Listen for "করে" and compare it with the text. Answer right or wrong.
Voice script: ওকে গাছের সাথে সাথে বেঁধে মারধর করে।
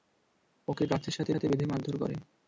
right